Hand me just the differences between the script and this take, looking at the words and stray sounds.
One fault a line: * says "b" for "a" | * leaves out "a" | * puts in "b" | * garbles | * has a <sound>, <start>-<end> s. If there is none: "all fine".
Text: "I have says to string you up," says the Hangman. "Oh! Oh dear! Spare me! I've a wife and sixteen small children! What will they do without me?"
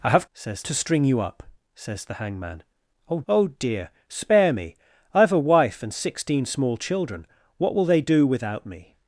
all fine